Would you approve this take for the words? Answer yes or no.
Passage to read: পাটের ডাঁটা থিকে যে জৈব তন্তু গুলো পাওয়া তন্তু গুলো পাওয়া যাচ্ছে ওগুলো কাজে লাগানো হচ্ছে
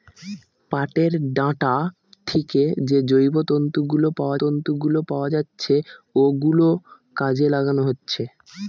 yes